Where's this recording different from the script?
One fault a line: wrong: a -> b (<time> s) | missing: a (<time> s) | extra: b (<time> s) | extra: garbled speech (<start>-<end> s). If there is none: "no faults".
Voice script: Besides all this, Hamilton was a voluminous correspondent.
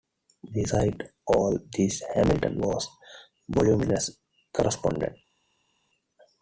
no faults